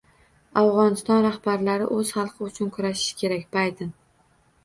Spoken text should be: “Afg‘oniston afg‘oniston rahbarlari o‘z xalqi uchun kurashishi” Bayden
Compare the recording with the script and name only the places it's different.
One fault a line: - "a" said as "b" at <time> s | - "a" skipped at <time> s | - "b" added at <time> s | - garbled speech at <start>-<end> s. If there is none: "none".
- "afg‘oniston" skipped at 1.2 s
- "kerak" added at 3.2 s